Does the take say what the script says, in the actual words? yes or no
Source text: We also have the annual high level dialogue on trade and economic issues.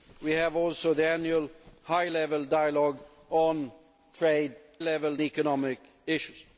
no